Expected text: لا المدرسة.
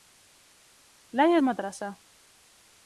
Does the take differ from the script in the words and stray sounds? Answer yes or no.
no